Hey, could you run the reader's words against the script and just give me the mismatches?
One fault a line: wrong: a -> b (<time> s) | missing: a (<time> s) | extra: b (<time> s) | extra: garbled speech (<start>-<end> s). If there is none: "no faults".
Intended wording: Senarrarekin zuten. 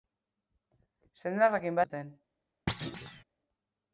no faults